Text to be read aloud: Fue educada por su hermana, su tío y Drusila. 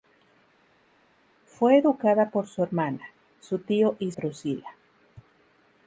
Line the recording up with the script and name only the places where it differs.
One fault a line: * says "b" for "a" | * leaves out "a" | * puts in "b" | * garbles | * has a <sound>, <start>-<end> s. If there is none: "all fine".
all fine